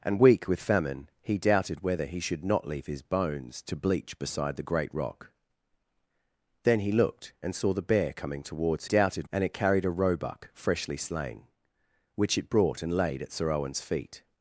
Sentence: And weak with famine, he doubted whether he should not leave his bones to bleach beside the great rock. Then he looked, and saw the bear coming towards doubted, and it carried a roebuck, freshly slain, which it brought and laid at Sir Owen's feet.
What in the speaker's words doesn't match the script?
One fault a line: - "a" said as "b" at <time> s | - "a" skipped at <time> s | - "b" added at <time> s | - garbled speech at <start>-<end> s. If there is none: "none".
none